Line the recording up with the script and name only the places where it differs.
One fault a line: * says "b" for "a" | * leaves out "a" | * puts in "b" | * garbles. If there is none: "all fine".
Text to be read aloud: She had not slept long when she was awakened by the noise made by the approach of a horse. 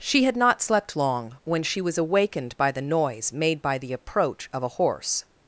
all fine